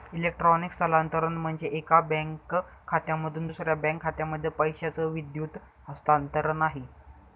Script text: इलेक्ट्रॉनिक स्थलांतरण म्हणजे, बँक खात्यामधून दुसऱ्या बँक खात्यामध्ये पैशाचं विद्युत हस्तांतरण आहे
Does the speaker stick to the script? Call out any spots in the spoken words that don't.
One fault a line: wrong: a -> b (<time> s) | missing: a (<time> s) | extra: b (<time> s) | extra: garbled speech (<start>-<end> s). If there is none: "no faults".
extra: एका (1.7 s)